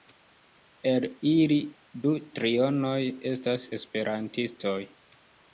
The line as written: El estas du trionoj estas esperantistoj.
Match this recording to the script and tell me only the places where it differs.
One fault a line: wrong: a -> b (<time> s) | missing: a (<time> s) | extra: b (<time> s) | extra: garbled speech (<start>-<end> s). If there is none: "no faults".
wrong: estas -> ili (1.3 s)